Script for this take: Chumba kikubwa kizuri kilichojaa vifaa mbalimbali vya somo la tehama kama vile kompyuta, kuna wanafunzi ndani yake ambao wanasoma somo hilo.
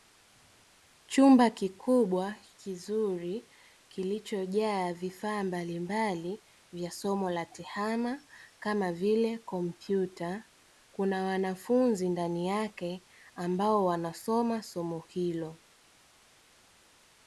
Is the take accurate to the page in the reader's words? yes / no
yes